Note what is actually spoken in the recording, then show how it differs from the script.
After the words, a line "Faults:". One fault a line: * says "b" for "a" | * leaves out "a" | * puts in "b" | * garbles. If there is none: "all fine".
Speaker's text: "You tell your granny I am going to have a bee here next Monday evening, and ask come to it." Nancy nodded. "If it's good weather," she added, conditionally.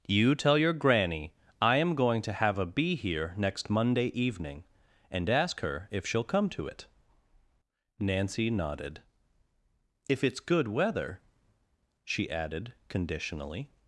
"You tell your granny I am going to have a bee here next Monday evening, and ask her if she'll come to it." Nancy nodded. "If it's good weather," she added, conditionally.
Faults:
* puts in "her if she'll"